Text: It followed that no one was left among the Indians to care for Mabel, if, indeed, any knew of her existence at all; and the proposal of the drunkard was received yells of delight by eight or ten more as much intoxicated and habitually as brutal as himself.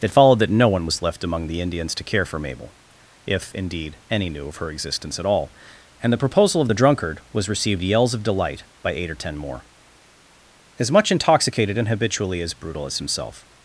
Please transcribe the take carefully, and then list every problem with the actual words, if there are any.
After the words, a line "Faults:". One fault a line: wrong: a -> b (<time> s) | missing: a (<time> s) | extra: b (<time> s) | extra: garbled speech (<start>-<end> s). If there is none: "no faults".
It followed that no one was left among the Indians to care for Mabel, if, indeed, any knew of her existence at all; and the proposal of the drunkard was received yells of delight by eight or ten more as much intoxicated and habitually as brutal as himself.
Faults:
no faults